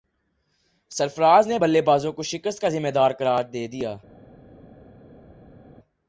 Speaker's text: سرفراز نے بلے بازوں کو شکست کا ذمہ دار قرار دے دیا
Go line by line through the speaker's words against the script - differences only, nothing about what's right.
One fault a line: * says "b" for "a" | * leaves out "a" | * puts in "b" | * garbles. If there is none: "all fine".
all fine